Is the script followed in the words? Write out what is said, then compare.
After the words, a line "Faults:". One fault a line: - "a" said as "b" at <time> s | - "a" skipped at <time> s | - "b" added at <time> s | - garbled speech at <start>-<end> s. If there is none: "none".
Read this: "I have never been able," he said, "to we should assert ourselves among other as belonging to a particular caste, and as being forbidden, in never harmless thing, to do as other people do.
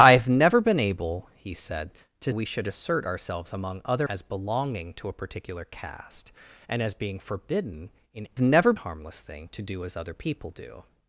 "I have never been able," he said, "to we should assert ourselves among other as belonging to a particular caste, and as being forbidden, in never harmless thing, to do as other people do.
Faults:
none